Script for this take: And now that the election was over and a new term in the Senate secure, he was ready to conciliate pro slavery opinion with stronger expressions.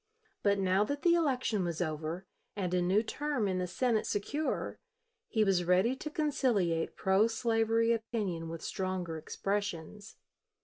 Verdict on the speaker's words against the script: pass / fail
fail